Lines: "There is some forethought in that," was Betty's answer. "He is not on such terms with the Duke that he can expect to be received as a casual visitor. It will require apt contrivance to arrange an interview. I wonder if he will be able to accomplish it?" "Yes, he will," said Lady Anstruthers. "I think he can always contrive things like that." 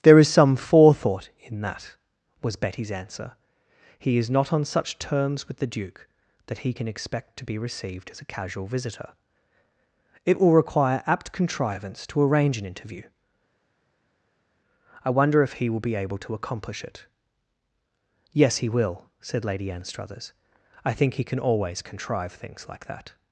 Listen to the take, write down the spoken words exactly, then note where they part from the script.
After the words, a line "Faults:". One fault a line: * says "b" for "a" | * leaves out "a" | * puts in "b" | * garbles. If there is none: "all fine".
"There is some forethought in that," was Betty's answer. "He is not on such terms with the Duke that he can expect to be received as a casual visitor. It will require apt contrivance to arrange an interview. I wonder if he will be able to accomplish it?" "Yes, he will," said Lady Anstruthers. "I think he can always contrive things like that."
Faults:
all fine